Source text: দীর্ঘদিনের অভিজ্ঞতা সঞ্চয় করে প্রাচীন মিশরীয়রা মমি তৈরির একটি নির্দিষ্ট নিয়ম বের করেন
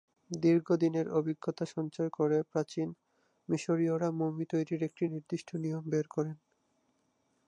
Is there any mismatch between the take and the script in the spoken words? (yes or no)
no